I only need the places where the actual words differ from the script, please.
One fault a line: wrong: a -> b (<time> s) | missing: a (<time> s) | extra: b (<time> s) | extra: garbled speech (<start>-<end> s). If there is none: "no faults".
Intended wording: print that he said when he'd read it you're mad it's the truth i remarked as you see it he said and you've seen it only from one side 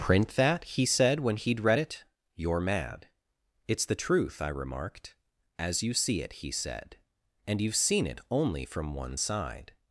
no faults